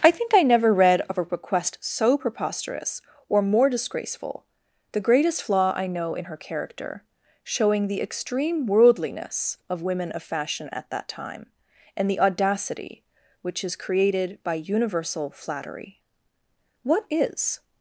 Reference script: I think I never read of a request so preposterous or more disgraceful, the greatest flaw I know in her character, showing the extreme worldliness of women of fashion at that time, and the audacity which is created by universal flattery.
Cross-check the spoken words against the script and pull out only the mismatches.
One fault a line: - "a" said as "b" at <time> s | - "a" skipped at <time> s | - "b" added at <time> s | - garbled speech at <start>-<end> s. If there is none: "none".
- "What is" added at 16.8 s